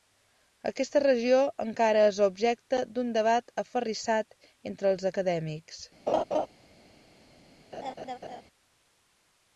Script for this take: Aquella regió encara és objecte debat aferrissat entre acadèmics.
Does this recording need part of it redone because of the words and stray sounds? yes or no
yes